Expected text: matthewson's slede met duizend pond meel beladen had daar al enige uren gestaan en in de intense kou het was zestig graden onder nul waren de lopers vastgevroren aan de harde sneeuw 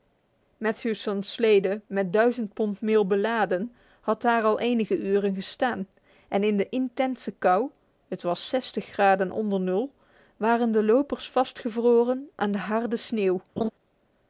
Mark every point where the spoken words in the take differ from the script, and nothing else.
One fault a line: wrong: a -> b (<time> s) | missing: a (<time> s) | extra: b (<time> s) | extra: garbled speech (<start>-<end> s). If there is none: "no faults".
no faults